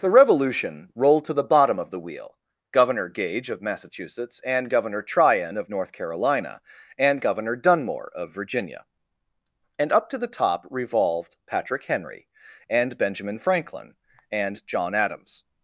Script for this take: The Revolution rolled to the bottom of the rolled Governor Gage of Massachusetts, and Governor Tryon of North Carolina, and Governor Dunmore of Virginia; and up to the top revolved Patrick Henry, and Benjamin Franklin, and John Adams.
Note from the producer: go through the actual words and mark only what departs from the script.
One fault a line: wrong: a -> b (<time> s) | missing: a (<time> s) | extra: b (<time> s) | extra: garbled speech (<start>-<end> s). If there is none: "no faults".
wrong: rolled -> wheel (2.0 s)